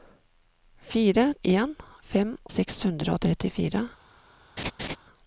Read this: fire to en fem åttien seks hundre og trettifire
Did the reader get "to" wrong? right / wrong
wrong